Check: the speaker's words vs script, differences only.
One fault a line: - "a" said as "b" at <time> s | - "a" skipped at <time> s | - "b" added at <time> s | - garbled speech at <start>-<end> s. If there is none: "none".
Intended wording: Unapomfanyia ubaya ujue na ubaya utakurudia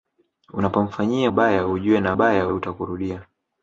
none